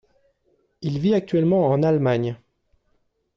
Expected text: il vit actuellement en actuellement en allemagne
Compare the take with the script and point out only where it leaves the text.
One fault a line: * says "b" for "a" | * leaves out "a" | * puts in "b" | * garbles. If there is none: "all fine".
* leaves out "actuellement en"